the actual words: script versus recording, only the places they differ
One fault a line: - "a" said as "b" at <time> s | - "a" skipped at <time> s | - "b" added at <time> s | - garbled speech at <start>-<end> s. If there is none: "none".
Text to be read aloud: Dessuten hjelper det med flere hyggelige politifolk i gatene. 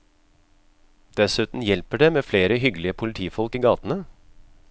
none